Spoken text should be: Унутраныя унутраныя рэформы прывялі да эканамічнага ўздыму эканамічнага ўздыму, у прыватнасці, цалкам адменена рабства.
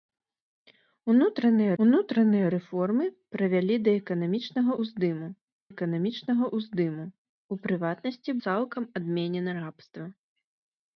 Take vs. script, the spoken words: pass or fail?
pass